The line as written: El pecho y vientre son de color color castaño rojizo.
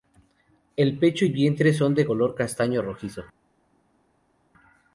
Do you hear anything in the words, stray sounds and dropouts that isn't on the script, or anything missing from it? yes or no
yes